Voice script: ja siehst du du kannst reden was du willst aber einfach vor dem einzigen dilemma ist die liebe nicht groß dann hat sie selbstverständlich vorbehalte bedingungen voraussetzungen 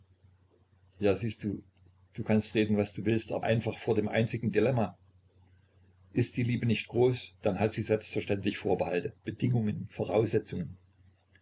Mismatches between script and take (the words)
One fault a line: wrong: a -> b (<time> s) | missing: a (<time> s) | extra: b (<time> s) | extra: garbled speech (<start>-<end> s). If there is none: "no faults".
no faults